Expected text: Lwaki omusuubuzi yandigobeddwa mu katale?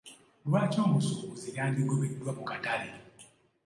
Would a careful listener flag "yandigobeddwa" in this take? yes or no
no